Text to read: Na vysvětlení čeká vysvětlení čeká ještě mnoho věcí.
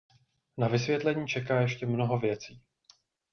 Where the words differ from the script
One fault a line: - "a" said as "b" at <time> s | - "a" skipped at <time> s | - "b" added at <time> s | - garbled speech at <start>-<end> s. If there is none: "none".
- "vysvětlení čeká" skipped at 1.6 s